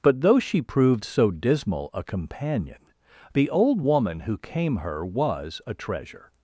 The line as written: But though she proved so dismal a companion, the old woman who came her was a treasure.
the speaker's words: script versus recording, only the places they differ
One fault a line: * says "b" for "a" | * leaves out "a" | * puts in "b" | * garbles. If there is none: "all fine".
all fine